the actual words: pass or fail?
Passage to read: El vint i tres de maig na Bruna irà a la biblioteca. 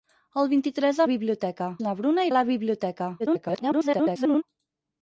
fail